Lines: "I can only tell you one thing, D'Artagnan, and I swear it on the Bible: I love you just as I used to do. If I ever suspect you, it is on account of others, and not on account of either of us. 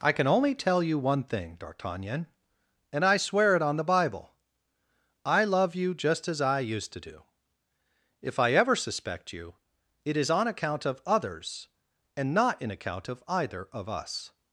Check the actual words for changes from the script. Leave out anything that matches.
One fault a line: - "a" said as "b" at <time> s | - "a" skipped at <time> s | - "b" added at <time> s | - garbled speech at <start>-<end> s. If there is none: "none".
- "on" said as "in" at 12.6 s